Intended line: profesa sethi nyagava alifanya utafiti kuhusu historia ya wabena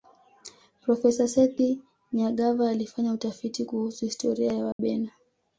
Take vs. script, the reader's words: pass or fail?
pass